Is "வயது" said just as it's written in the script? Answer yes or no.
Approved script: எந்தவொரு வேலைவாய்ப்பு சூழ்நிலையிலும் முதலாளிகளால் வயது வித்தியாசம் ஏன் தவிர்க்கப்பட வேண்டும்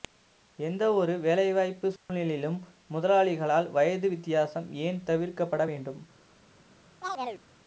yes